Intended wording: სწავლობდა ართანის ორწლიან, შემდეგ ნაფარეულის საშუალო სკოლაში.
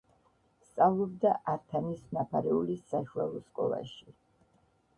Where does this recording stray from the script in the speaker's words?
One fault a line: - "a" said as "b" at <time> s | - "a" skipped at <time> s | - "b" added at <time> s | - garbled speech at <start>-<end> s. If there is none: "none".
- "ორწლიან შემდეგ" skipped at 2.1 s